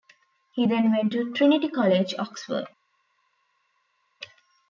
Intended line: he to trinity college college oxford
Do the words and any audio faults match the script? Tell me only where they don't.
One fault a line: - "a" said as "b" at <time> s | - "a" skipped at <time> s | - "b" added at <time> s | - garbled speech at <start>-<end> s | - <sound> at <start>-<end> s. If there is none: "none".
- "then went" added at 0.6 s
- "college" skipped at 2.1 s